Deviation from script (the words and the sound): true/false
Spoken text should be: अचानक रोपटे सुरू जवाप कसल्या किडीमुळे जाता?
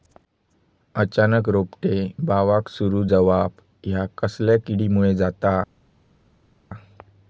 true